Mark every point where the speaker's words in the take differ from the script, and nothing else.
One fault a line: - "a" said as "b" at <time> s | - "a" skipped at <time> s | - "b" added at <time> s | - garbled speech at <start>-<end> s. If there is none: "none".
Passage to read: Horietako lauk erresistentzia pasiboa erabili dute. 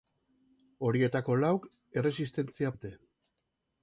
- "pasiboa erabili" skipped at 2.7 s